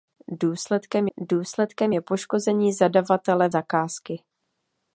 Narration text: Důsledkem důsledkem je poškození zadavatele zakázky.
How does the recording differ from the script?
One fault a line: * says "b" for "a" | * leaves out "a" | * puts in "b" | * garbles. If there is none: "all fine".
all fine